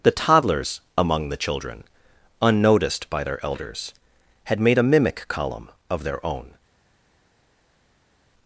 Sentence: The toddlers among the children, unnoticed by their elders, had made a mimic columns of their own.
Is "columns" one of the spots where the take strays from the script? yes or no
yes